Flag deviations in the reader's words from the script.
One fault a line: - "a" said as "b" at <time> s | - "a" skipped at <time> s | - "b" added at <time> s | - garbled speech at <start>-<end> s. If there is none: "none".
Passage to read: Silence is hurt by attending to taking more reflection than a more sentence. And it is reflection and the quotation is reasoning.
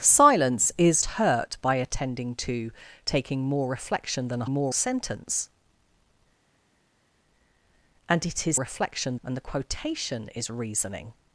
none